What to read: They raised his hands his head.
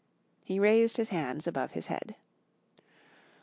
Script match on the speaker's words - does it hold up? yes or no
no